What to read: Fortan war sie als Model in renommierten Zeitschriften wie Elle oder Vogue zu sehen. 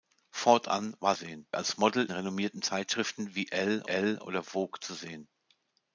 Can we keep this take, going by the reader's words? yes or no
no